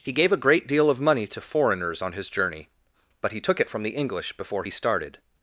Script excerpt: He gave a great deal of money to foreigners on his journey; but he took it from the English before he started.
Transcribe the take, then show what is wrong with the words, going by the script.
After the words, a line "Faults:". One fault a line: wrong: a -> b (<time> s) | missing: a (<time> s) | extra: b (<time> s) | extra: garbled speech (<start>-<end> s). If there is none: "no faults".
He gave a great deal of money to foreigners on his journey; but he took it from the English before he started.
Faults:
no faults